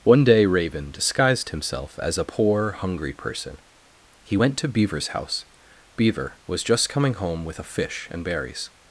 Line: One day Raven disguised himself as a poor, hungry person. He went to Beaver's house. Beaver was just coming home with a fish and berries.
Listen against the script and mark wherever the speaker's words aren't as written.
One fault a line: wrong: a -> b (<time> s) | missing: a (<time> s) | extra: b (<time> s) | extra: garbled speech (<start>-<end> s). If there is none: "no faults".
no faults